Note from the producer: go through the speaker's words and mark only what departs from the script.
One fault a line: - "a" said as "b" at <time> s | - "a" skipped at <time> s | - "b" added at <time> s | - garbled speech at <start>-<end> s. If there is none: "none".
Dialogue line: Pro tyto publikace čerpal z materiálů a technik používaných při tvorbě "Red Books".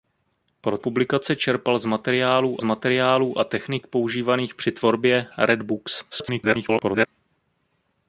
- "tyto" skipped at 0.8 s
- "materiálů" added at 2.6 s
- garbled speech at 6.1-7.1 s